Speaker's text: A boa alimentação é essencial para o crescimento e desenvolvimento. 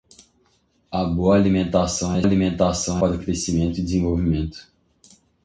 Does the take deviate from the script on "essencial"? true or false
true